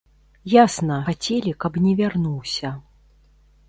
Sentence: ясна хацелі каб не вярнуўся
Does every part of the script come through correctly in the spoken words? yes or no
yes